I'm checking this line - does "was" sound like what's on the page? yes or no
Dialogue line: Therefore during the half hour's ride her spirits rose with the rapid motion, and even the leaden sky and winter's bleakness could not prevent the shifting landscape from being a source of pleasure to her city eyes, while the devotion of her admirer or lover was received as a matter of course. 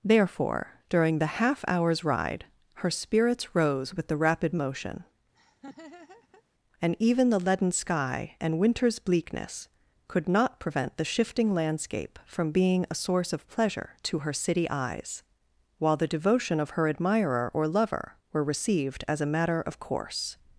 no